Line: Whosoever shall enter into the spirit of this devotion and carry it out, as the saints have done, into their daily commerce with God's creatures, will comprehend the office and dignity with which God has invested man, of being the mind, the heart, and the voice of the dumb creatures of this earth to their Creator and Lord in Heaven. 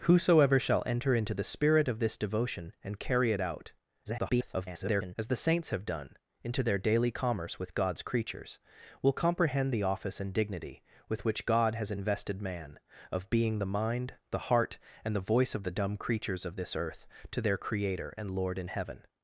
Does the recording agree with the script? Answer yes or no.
no